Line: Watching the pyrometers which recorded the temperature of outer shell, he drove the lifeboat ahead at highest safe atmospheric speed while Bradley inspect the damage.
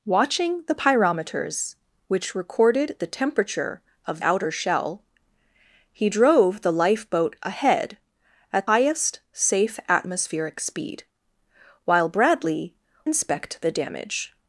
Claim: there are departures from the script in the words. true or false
false